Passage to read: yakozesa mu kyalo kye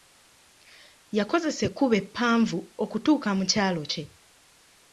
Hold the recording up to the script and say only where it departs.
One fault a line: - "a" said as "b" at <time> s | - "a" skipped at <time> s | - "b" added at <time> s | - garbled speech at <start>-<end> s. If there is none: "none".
- "ekkubo eppanvu okutuuka" added at 1.7 s